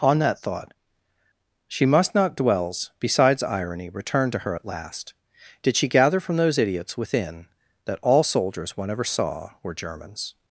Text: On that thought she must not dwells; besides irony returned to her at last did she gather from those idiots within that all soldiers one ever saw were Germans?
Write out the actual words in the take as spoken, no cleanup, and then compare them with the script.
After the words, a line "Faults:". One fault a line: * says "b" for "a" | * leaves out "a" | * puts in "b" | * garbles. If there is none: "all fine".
On that thought she must not dwells; besides irony returned to her at last did she gather from those idiots within that all soldiers one ever saw were Germans?
Faults:
all fine